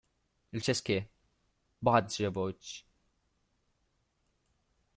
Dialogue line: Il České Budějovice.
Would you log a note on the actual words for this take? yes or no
no